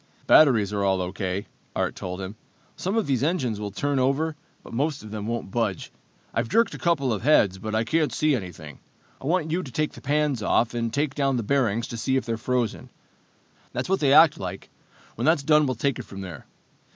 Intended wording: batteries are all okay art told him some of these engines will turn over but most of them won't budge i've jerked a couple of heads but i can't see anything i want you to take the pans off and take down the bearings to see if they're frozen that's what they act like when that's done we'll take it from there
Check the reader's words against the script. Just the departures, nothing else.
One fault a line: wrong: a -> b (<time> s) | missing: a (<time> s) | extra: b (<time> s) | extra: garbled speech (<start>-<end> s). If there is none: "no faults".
no faults